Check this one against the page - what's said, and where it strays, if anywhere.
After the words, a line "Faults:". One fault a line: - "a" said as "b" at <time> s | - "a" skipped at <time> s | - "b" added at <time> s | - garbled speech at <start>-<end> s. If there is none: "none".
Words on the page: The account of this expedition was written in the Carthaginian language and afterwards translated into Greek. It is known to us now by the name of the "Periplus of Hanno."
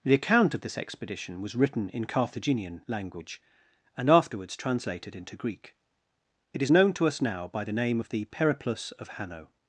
The account of this expedition was written in Carthaginian language and afterwards translated into Greek. It is known to us now by the name of the "Periplus of Hanno."
Faults:
- "the" skipped at 2.0 s